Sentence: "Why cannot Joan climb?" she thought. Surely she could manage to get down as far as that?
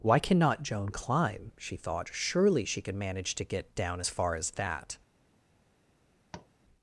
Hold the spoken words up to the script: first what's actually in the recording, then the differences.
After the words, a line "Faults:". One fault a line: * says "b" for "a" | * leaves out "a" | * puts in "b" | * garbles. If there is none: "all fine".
"Why cannot Joan climb?" she thought. Surely she could manage to get down as far as that?
Faults:
all fine